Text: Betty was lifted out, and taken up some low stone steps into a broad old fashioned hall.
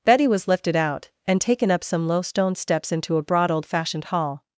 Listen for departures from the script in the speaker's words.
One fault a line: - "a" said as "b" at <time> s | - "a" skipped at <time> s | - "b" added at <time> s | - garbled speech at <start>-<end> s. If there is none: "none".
none